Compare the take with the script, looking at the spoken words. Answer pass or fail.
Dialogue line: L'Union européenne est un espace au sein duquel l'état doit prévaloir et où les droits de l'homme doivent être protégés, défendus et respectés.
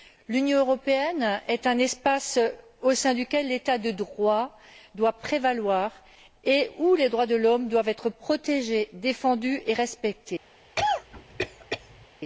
fail